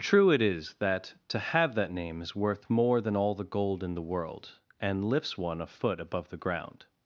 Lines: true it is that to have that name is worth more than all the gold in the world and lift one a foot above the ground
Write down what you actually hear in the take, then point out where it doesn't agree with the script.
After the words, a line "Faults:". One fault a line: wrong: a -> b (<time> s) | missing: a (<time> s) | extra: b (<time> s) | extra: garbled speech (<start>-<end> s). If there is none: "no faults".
true it is that to have that name is worth more than all the gold in the world and lifts one a foot above the ground
Faults:
wrong: lift -> lifts (5.0 s)